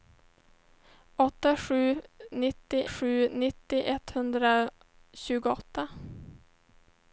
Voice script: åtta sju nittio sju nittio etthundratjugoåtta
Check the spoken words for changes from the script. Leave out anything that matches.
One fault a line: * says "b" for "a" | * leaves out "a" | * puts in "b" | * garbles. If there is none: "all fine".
all fine